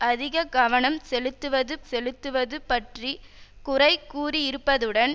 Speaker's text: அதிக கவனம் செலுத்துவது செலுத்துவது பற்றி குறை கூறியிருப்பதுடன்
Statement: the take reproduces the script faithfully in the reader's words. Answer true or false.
true